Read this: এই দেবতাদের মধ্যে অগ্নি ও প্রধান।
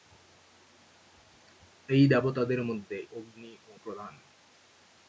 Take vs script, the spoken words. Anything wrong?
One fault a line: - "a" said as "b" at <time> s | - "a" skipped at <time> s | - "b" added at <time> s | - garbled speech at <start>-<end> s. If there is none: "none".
none